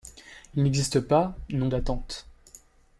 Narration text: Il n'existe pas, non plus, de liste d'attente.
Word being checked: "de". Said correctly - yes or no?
no